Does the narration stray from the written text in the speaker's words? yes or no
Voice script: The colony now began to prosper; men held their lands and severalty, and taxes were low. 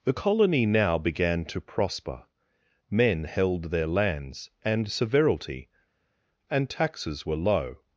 no